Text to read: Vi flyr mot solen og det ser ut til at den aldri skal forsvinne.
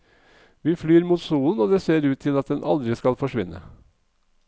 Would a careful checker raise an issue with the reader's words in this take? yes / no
no